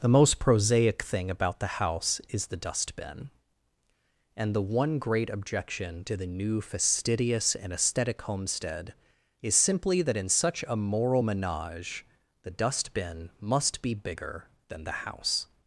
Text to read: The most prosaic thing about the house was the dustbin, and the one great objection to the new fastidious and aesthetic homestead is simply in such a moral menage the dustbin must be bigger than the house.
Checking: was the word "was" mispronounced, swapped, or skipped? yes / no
yes